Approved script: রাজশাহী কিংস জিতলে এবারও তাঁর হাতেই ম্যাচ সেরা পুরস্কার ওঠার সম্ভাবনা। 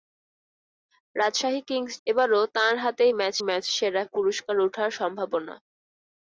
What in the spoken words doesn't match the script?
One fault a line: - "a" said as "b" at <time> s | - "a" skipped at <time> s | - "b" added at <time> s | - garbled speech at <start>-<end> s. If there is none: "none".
- "জিতলে" skipped at 1.9 s
- "ম্যাচ" added at 3.5 s